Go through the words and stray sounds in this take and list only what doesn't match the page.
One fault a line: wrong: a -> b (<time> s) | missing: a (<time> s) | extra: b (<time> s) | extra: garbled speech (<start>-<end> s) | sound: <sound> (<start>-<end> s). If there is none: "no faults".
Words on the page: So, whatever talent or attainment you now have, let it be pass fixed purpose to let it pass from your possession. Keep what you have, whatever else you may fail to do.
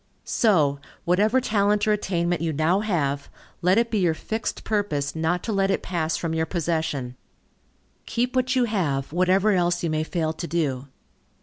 wrong: pass -> your (4.0 s)
extra: not (5.1 s)